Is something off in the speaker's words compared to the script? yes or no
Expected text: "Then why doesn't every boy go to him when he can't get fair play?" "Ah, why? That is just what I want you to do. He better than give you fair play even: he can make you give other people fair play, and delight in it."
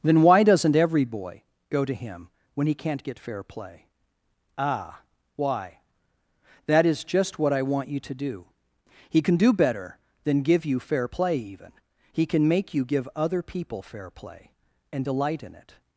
yes